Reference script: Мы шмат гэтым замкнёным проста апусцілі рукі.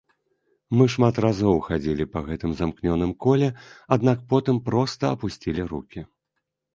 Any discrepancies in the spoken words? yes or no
yes